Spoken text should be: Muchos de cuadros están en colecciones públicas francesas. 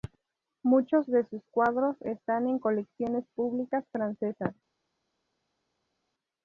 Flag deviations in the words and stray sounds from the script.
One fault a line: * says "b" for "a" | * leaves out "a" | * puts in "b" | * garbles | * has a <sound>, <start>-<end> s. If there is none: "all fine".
* puts in "sus"